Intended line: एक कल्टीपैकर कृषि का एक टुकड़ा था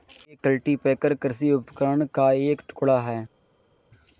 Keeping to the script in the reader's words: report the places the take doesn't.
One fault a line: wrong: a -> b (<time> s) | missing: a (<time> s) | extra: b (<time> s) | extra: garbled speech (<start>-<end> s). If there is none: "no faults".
extra: उपकरण (1.5 s)
wrong: था -> है (3.0 s)